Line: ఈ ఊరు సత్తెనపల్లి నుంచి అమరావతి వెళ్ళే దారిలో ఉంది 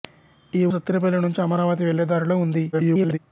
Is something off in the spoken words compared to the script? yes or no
yes